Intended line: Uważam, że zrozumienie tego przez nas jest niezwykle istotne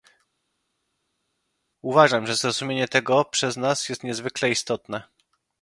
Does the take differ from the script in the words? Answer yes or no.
no